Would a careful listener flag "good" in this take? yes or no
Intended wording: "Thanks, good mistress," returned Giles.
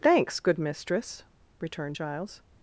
no